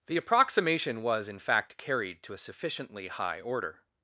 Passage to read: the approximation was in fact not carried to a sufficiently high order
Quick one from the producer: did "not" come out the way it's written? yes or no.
no